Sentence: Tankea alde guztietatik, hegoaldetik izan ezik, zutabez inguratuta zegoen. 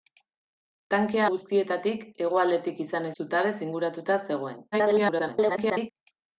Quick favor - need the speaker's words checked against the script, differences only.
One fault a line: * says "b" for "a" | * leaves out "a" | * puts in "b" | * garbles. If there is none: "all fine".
* leaves out "alde"
* leaves out "ezik"
* garbles